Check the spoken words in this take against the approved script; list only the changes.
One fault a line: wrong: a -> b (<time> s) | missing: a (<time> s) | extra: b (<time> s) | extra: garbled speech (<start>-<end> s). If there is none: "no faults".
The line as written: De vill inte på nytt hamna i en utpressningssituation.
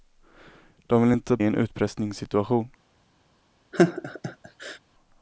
missing: på nytt hamna (1.4 s)